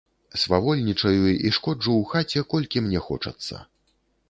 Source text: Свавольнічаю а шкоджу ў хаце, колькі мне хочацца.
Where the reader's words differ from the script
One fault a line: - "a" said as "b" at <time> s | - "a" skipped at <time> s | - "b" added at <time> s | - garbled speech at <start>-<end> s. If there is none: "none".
- "а" said as "і" at 1.3 s